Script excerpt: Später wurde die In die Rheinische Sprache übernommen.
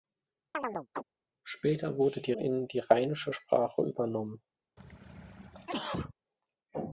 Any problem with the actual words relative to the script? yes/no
no